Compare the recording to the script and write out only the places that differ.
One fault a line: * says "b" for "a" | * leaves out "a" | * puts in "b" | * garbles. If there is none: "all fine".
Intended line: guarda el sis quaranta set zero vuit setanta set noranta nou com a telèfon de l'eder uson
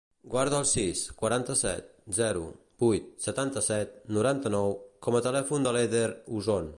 all fine